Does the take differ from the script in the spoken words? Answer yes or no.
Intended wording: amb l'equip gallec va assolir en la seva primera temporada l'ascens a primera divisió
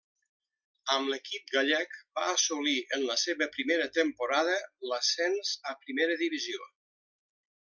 no